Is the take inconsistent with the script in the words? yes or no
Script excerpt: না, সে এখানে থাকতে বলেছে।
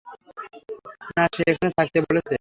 no